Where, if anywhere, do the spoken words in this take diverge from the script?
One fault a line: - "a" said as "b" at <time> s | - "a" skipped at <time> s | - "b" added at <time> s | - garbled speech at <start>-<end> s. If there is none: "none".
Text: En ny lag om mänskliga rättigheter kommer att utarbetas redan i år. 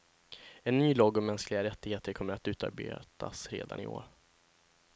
none